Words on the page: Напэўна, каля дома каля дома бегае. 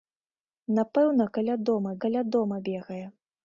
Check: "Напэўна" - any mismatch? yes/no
no